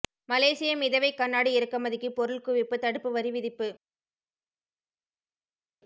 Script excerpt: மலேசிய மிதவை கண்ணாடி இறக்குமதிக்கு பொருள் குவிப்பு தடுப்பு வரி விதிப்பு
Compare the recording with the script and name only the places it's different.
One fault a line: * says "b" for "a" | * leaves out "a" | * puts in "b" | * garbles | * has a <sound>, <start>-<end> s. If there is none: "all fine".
all fine